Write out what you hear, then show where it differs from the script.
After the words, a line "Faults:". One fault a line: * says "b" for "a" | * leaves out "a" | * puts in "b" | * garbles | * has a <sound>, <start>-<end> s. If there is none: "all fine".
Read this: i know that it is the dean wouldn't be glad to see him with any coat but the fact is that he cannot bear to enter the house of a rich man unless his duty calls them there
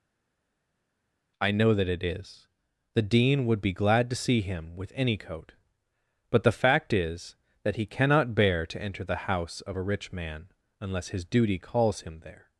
i know that it is the dean would be glad to see him with any coat but the fact is that he cannot bear to enter the house of a rich man unless his duty calls him there
Faults:
* says "would" for "wouldn't"
* says "him" for "them"